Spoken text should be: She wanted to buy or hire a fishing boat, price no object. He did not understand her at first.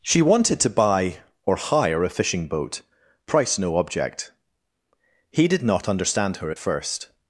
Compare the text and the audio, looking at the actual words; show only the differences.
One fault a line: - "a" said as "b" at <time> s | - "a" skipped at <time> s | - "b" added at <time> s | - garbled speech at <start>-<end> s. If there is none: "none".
none